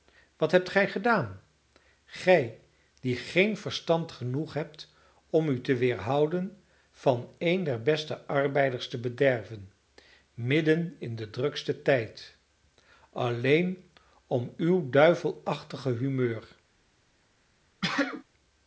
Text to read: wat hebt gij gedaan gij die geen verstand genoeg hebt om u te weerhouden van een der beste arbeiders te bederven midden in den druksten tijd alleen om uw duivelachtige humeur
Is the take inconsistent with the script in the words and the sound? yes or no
yes